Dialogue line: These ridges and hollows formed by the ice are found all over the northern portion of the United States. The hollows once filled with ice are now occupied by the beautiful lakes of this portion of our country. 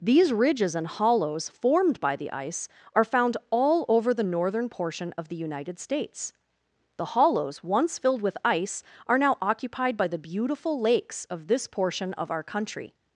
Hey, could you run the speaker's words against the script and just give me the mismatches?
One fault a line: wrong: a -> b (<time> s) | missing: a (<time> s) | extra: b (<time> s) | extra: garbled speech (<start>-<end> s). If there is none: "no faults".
no faults